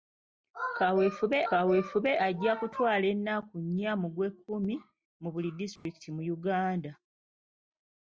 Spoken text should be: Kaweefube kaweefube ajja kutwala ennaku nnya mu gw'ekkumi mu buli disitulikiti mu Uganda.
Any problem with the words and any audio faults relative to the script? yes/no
yes